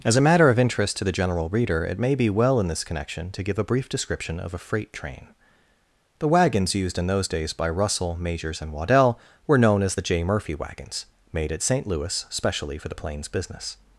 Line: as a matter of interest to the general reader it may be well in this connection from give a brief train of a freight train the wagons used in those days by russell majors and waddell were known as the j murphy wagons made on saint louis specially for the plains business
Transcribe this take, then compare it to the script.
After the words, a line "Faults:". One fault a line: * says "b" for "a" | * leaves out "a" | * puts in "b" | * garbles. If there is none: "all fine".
as a matter of interest to the general reader it may be well in this connection to give a brief description of a freight train the wagons used in those days by russell majors and waddell were known as the j murphy wagons made at saint louis specially for the plains business
Faults:
* says "to" for "from"
* says "description" for "train"
* says "at" for "on"